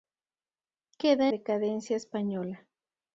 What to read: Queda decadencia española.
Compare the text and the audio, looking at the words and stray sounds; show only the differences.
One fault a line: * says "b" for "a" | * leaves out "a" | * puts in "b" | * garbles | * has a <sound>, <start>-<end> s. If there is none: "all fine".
all fine